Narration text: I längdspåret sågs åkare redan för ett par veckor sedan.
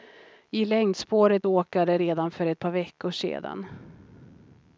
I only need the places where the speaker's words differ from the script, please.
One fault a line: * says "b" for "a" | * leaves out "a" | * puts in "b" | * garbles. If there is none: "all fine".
* leaves out "sågs"